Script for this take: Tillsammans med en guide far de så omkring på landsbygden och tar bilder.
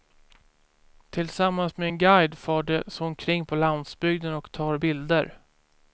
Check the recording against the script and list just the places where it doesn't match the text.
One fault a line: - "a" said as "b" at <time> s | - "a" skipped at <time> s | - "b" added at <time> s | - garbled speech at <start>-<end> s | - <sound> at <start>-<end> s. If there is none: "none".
none